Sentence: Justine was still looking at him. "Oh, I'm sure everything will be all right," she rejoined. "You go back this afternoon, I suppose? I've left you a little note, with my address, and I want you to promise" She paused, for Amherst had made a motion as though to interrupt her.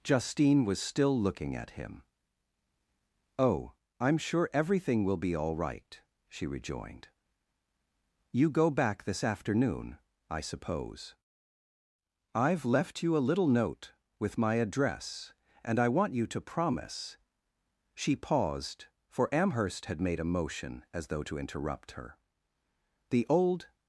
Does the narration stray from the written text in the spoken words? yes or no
yes